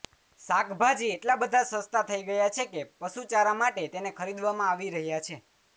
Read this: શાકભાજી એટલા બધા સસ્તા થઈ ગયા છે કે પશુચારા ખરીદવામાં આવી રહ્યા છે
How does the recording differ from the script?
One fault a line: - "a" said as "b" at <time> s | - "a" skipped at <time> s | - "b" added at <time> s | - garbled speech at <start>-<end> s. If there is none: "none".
- "માટે તેને" added at 3.6 s